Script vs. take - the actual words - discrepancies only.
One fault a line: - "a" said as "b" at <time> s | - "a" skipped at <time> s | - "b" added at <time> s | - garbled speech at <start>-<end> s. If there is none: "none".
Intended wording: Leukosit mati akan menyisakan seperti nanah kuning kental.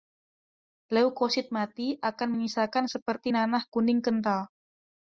none